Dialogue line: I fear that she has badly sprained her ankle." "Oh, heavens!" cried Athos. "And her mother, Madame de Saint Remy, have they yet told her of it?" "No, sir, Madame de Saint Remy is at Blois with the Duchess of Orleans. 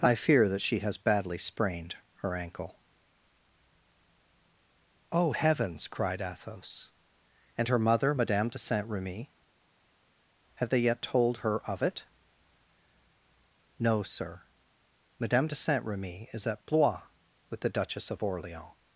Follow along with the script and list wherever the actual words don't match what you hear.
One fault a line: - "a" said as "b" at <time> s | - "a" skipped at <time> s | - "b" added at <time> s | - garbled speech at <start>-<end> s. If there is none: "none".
none